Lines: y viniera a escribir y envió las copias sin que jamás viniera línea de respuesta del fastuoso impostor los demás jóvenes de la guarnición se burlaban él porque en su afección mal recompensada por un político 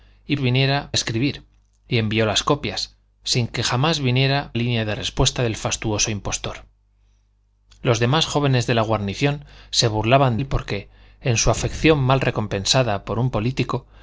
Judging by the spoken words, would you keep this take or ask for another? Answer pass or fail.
pass